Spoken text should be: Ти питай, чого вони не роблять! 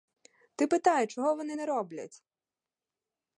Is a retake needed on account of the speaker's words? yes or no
no